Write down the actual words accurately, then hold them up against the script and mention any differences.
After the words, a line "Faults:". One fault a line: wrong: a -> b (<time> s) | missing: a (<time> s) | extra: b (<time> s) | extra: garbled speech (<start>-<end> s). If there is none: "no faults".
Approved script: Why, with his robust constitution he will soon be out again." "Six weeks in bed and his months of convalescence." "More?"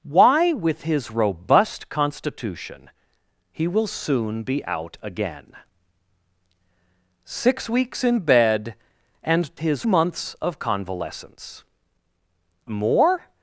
Why, with his robust constitution he will soon be out again." "Six weeks in bed and his months of convalescence." "More?"
Faults:
no faults